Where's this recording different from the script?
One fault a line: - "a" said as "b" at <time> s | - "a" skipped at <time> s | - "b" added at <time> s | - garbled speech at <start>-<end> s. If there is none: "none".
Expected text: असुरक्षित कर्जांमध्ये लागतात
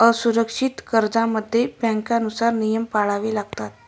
- "बँकांनुसार नियम पाळावे" added at 1.8 s